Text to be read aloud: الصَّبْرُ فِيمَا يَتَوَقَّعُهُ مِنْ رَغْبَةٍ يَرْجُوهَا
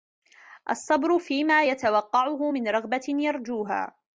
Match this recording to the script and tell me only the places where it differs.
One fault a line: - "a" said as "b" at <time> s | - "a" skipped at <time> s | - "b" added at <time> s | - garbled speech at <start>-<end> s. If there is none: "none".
none